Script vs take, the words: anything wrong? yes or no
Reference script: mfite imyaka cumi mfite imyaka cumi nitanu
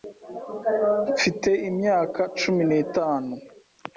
yes